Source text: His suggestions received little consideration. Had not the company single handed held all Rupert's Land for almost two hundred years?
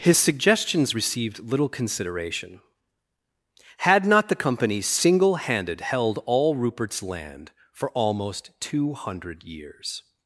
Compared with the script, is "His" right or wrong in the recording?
right